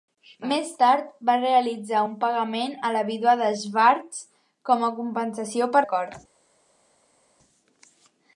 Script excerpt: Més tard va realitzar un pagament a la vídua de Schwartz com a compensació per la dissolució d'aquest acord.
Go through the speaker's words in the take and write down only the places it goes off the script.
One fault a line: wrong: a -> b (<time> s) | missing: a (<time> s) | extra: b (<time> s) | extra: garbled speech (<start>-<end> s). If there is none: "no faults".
missing: la dissolució d'aquest (5.8 s)